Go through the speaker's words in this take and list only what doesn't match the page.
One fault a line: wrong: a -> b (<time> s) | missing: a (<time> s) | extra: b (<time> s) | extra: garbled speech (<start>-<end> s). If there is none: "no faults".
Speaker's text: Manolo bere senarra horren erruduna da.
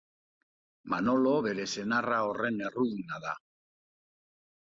no faults